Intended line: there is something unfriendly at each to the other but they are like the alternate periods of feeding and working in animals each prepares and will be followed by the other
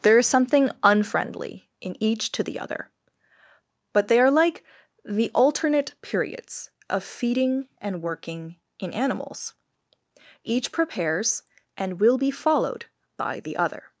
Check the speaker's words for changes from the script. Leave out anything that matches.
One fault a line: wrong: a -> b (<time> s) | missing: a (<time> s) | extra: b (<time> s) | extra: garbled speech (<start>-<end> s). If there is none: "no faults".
wrong: at -> in (1.8 s)